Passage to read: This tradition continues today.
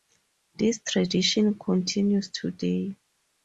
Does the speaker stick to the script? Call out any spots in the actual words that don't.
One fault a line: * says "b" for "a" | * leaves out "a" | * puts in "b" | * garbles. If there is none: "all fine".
all fine